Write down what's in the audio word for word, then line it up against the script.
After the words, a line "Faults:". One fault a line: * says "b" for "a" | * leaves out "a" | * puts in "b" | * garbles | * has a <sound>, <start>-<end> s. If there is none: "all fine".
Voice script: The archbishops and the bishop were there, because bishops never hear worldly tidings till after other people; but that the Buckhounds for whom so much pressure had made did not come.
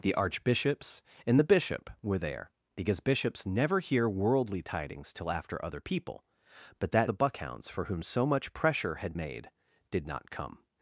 The archbishops and the bishop were there, because bishops never hear worldly tidings till after other people; but that the Buckhounds for whom so much pressure had made did not come.
Faults:
all fine